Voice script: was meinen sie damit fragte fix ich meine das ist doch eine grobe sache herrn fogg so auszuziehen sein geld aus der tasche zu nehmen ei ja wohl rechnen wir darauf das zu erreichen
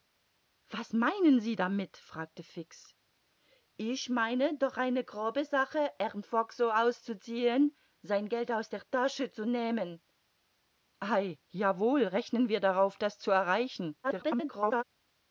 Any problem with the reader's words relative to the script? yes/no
yes